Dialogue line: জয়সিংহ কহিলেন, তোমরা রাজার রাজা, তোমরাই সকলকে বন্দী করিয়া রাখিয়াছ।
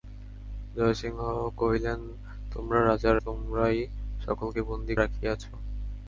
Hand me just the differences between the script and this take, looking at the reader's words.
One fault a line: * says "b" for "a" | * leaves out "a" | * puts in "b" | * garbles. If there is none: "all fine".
* leaves out "রাজা"
* leaves out "করিয়া"